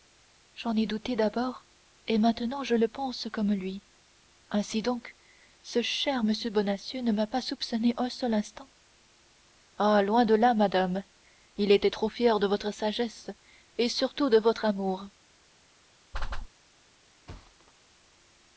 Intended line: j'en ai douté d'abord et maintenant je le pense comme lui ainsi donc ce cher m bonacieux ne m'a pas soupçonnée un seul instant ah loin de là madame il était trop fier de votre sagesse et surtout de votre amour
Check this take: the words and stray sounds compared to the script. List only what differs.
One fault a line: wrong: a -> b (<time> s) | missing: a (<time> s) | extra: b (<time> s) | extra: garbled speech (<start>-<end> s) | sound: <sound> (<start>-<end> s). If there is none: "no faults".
sound: whoosh (16.1-16.5 s)
sound: thud (17.3-17.7 s)